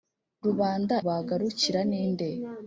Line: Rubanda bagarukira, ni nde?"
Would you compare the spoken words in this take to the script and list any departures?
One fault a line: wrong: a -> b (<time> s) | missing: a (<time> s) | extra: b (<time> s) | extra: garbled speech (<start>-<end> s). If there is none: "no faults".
no faults